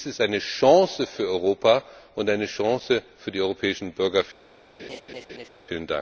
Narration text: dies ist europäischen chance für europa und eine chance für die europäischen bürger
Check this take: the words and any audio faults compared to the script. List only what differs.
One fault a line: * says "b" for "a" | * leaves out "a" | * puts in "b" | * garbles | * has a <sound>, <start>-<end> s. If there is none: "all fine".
* says "eine" for "europäischen"
* has a laugh, 4.8-5.5 s